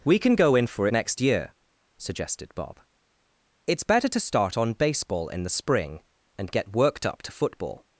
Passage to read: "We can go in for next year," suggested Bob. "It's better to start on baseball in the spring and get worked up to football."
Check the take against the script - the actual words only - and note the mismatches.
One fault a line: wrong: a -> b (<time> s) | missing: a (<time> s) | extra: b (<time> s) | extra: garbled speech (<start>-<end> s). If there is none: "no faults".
no faults